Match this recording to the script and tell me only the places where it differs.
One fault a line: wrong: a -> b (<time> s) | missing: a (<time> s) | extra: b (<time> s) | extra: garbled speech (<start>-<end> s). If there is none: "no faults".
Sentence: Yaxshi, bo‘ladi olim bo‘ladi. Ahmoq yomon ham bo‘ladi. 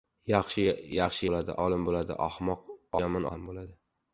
no faults